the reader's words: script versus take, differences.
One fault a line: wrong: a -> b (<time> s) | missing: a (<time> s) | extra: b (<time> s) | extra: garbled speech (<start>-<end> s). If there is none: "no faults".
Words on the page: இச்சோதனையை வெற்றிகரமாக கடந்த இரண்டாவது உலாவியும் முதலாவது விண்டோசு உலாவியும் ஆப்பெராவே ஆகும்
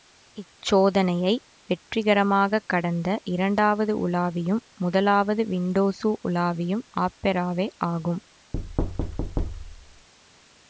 no faults